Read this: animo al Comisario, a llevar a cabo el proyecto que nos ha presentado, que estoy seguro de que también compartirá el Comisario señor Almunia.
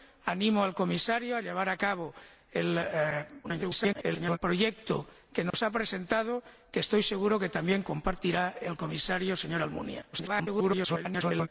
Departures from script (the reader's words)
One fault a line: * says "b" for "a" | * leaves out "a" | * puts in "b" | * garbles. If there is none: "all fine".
* garbles
* garbles